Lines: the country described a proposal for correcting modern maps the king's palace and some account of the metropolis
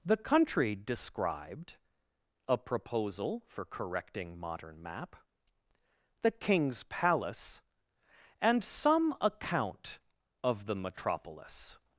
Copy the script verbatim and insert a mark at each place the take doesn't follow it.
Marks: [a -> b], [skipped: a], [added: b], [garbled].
the country described a proposal for correcting modern [maps -> map] the king's palace and some account of the metropolis